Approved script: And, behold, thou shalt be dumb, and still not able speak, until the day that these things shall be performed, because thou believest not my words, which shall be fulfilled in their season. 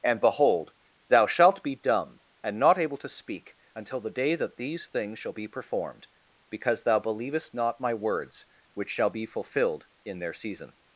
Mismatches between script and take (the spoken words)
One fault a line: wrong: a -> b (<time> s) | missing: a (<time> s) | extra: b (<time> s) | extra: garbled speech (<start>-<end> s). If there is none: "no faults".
missing: still (2.6 s)
extra: to (3.0 s)